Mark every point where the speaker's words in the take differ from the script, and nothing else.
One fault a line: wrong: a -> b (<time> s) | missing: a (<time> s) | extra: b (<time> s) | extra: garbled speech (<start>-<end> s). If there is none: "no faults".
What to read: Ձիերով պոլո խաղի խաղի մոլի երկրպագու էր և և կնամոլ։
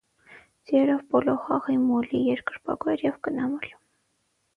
missing: խաղի (1.8 s)
missing: և (3.2 s)